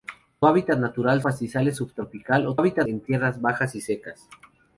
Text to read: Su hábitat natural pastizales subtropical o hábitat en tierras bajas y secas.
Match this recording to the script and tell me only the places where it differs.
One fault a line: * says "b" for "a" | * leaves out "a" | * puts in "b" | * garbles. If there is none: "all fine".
all fine